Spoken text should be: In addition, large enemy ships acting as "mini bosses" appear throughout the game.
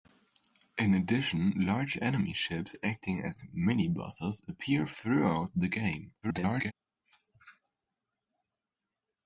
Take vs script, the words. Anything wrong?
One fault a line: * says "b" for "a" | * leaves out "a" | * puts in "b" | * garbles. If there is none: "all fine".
* garbles